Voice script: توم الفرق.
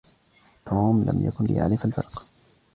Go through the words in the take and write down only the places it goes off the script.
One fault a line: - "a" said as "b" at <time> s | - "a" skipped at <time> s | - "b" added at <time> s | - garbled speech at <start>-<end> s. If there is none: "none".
- "لم يكن ليعرف" added at 1.0 s